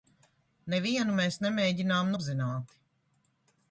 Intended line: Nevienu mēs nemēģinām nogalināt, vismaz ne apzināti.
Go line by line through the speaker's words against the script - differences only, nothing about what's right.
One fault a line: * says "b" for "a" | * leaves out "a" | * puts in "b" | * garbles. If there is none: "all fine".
* leaves out "nogalināt vismaz ne"